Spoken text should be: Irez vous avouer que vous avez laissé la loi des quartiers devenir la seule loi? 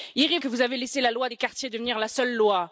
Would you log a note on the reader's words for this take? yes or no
yes